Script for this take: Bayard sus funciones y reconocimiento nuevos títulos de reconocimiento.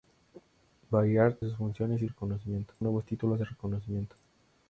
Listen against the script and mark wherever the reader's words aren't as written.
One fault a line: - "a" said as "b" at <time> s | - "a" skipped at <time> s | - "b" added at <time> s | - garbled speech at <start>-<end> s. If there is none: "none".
none